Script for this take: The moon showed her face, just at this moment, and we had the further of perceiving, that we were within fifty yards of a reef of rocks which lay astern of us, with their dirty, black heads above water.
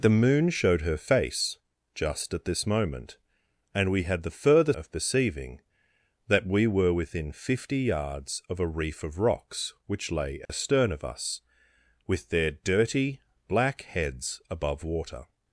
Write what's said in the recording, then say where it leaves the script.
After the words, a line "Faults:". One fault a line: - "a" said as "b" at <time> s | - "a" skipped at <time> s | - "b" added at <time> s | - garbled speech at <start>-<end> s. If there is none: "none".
The moon showed her face, just at this moment, and we had the further of perceiving, that we were within fifty yards of a reef of rocks which lay astern of us, with their dirty, black heads above water.
Faults:
none